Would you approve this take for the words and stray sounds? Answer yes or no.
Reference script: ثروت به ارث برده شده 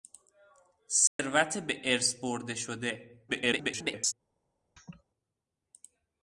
no